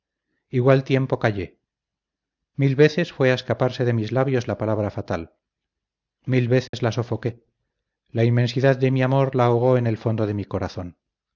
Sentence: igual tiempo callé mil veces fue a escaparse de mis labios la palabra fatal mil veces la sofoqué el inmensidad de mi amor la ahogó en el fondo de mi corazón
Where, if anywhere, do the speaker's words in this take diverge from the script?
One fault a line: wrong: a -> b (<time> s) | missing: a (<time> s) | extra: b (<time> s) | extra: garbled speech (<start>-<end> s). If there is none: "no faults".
wrong: el -> la (8.1 s)